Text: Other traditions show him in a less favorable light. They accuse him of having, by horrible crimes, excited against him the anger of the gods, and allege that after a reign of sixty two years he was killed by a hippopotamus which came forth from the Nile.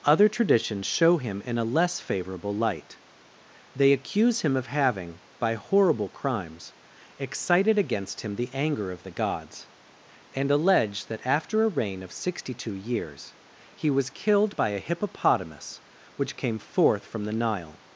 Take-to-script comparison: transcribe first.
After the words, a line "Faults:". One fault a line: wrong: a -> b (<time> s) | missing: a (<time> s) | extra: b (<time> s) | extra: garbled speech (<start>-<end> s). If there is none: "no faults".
Other traditions show him in a less favorable light. They accuse him of having, by horrible crimes, excited against him the anger of the gods, and allege that after a reign of sixty two years he was killed by a hippopotamus which came forth from the Nile.
Faults:
no faults